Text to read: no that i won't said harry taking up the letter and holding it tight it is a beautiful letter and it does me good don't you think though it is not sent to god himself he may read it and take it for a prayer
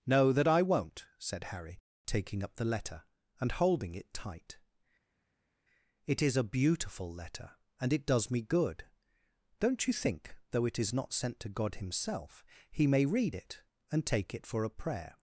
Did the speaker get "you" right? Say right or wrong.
right